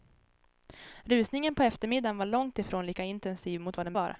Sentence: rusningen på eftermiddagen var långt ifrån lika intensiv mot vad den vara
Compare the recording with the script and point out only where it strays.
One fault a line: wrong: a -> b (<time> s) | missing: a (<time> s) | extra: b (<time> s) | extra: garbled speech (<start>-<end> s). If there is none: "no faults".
no faults